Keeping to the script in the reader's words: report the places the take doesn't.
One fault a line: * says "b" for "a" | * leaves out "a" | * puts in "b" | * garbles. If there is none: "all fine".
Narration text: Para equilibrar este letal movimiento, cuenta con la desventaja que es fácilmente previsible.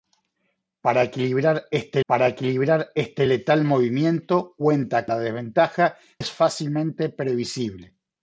* puts in "para equilibrar este"
* leaves out "con"
* leaves out "que"